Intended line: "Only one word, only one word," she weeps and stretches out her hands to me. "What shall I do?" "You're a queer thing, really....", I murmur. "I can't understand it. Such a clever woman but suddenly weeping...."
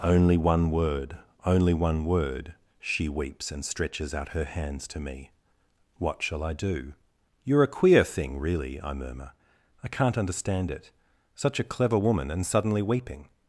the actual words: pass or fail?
fail